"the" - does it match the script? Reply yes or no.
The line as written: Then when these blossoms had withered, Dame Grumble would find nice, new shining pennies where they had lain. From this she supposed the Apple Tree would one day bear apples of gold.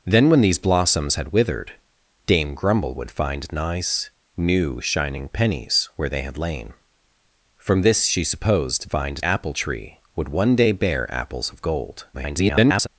no